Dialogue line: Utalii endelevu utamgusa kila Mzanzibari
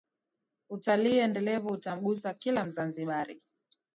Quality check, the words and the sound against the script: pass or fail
pass